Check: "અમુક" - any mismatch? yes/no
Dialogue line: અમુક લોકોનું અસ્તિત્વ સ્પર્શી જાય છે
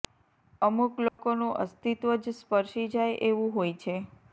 no